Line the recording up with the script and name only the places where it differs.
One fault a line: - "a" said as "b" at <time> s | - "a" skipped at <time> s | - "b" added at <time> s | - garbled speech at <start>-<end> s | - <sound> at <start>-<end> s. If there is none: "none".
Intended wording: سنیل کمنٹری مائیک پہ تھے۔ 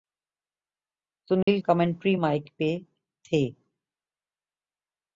- dropout at 1.4-1.5 s